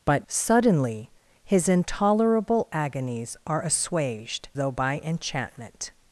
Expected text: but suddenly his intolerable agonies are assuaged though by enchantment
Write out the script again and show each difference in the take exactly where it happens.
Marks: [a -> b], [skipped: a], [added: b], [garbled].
but suddenly his intolerable agonies are assuaged though by enchantment